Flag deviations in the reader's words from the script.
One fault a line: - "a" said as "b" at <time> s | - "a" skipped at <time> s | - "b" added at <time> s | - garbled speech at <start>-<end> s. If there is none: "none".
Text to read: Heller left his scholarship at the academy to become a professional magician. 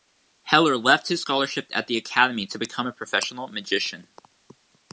none